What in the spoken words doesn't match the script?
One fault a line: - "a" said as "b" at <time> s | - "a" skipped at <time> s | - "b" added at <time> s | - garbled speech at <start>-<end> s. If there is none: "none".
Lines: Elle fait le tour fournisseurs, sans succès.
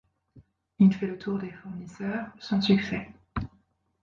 - "Elle" said as "Il" at 0.8 s
- "des" added at 1.4 s